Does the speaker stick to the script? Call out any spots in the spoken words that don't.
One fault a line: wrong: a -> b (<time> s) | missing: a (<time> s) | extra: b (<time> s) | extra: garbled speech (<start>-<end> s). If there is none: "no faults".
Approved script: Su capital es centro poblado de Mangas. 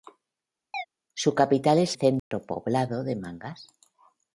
no faults